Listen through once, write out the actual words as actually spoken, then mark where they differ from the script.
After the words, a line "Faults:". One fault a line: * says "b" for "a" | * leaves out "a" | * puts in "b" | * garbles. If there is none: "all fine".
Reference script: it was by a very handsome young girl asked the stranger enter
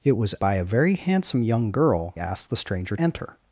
it was by a very handsome young girl asked the stranger enter
Faults:
all fine